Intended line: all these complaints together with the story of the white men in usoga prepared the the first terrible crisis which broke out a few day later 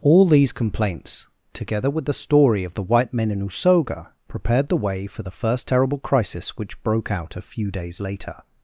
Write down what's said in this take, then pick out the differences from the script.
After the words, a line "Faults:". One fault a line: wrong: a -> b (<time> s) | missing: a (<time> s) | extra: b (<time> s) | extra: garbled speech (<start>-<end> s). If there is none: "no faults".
all these complaints together with the story of the white men in usoga prepared the way for the first terrible crisis which broke out a few days later
Faults:
extra: way for (4.8 s)
wrong: day -> days (7.7 s)